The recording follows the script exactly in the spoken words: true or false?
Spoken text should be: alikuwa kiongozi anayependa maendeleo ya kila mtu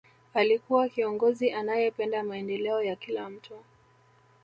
true